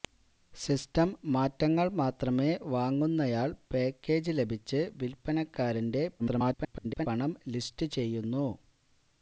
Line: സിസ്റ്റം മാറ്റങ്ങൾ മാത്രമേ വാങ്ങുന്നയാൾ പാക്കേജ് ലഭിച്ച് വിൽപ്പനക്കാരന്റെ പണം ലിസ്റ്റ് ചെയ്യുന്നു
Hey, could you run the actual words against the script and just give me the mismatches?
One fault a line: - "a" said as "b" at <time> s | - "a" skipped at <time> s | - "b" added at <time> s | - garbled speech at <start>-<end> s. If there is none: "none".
- garbled speech at 6.2-7.1 s